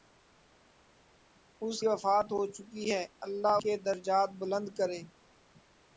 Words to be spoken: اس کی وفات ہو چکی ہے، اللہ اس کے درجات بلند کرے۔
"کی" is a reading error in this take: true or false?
true